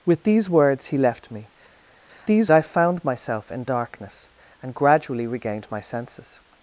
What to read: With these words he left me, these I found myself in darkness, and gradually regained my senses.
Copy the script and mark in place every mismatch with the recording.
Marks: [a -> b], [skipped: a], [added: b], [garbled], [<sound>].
With these words he left me, these I found myself in darkness, and gradually regained my senses.